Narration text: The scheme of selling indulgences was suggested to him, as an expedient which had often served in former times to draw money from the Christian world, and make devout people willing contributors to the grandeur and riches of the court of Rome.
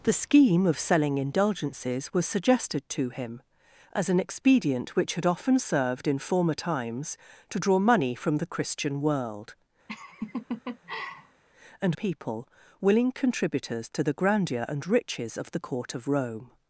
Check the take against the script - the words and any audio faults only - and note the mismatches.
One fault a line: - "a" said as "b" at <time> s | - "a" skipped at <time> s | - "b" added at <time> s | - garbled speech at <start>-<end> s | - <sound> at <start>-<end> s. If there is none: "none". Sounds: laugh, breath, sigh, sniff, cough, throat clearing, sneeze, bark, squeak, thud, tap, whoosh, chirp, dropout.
- laugh at 9.9-11.4 s
- "make devout" skipped at 12.0 s